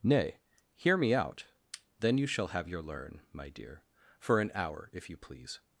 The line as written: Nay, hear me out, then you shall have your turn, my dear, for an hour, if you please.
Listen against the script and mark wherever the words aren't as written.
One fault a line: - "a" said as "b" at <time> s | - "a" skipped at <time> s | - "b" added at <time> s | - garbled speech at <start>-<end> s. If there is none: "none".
- "turn" said as "learn" at 2.8 s